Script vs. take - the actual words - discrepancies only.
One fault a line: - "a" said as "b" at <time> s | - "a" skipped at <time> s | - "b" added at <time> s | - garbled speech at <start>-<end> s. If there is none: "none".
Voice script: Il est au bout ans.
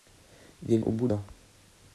none